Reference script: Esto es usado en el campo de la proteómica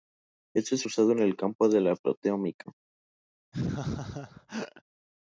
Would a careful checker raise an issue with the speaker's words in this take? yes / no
no